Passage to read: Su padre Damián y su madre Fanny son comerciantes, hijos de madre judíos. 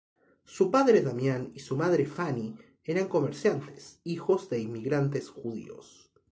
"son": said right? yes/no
no